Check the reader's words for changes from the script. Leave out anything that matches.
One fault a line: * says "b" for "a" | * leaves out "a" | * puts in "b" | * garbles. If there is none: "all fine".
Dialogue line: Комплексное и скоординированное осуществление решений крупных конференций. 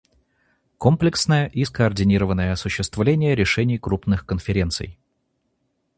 all fine